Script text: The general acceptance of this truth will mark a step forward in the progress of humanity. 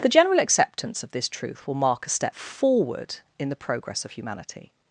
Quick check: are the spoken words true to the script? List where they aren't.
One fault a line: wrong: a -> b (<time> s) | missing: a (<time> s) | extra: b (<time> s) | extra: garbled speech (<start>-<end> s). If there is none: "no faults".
no faults